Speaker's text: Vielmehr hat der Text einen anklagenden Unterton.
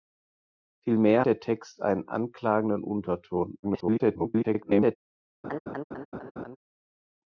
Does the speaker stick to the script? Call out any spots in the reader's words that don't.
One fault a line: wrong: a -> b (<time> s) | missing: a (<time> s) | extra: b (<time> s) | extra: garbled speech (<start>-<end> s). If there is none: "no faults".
missing: hat (1.2 s)
extra: garbled speech (3.6-5.0 s)